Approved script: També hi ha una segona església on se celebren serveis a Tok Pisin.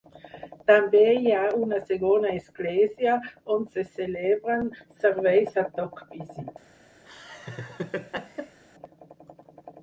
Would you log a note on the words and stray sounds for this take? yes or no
yes